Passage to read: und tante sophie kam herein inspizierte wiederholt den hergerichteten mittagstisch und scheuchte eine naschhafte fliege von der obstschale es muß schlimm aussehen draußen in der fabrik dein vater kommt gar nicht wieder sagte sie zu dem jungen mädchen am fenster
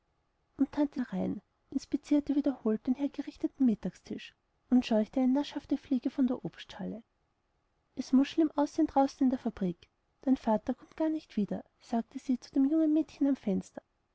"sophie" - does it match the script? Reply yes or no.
no